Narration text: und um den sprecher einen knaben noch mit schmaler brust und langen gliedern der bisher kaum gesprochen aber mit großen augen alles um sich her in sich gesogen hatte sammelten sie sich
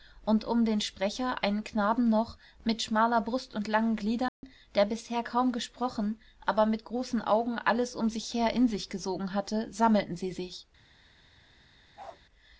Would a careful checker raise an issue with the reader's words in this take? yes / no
no